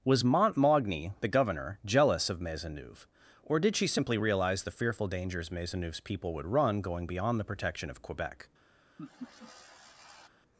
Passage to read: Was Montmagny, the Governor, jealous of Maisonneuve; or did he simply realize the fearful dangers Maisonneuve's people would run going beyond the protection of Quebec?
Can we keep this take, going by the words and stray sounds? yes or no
no